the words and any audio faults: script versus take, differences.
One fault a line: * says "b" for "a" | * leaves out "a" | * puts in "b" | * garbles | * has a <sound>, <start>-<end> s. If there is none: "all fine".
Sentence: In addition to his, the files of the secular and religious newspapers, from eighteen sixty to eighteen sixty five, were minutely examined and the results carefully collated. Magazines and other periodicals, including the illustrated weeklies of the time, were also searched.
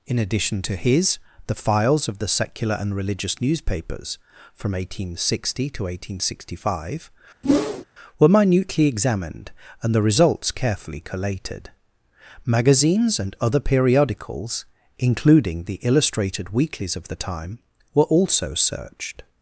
* has a whoosh, 7.4-7.9 s